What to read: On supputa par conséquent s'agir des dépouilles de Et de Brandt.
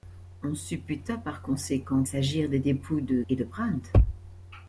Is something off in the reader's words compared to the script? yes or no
no